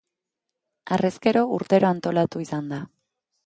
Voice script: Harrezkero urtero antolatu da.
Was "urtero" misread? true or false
false